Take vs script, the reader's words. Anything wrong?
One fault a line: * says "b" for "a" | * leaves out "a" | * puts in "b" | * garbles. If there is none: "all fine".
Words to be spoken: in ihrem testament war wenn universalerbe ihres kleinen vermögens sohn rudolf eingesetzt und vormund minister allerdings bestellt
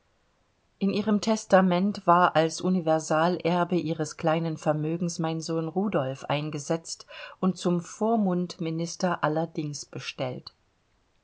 * says "als" for "wenn"
* puts in "mein"
* puts in "zum"